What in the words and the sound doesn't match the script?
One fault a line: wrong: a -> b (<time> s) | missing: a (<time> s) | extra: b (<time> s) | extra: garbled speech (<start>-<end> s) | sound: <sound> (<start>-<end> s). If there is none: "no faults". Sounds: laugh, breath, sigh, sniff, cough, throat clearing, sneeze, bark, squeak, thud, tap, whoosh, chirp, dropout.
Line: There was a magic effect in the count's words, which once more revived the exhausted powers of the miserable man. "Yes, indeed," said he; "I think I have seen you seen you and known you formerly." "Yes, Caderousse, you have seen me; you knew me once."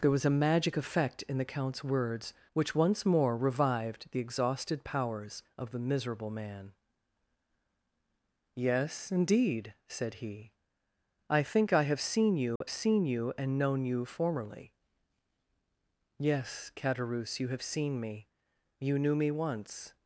sound: dropout (12.6-12.6 s)